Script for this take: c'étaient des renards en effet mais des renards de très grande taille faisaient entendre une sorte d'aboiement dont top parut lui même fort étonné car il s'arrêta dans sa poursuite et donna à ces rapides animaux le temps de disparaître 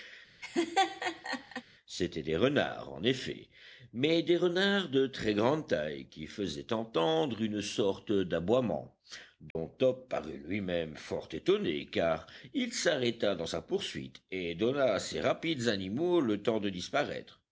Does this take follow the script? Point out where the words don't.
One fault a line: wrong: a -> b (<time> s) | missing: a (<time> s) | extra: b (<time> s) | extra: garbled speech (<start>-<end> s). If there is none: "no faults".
extra: qui (6.1 s)